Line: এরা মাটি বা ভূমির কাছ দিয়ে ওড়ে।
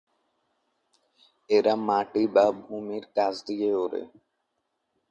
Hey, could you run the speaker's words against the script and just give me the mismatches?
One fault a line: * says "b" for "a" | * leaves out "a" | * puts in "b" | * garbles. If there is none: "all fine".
all fine